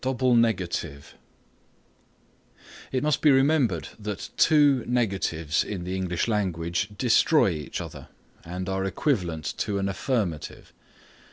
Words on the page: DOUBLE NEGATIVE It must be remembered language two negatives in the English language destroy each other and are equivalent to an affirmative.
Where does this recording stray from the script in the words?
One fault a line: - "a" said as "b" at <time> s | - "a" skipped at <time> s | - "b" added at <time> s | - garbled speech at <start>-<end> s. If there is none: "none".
- "language" said as "that" at 4.0 s